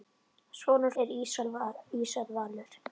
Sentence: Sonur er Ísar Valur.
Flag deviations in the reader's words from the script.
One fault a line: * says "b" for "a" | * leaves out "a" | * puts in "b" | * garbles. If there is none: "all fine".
all fine